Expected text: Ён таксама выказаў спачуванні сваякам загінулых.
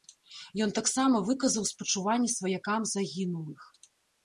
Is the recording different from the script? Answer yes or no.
no